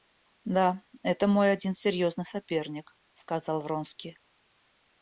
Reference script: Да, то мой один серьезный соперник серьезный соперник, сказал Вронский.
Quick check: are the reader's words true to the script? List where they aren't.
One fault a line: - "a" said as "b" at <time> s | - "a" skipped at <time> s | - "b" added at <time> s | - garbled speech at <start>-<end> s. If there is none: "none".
- "то" said as "это" at 1.0 s
- "серьезный соперник" skipped at 3.0 s